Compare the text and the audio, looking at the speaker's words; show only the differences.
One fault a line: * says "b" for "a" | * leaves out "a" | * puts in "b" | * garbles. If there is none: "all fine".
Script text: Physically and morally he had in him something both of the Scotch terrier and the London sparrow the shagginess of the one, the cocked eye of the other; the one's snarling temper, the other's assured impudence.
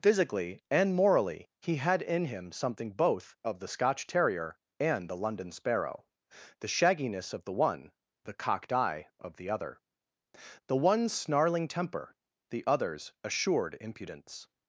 all fine